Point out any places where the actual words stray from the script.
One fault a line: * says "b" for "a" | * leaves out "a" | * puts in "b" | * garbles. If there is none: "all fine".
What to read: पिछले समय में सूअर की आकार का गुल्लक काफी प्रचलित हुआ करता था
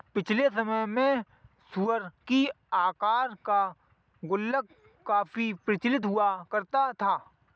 all fine